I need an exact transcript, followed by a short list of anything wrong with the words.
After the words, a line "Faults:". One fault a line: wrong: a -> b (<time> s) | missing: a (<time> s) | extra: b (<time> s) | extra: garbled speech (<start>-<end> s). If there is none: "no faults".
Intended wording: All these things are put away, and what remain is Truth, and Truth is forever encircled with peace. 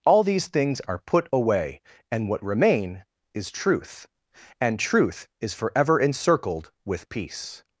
All these things are put away, and what remain is Truth, and Truth is forever encircled with peace.
Faults:
no faults